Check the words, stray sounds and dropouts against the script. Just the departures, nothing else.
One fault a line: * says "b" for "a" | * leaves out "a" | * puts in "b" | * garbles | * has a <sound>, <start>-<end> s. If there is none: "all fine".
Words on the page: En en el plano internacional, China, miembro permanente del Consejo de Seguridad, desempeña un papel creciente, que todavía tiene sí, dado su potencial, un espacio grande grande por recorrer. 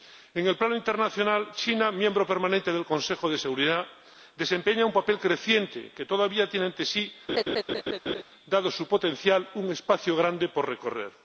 * leaves out "en"
* puts in "ante"
* has a laugh, 7.3-8.2 s
* leaves out "grande"